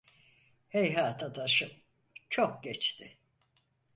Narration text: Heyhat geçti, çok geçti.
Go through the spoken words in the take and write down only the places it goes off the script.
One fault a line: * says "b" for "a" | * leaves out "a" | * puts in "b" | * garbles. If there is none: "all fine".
* says "adaşım" for "geçti"